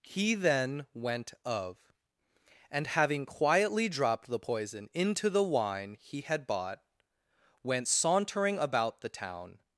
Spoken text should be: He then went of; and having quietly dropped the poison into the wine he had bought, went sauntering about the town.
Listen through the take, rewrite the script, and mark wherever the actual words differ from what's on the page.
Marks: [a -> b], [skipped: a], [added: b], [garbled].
He then went of; and having quietly dropped the poison into the wine he had bought, went sauntering about the town.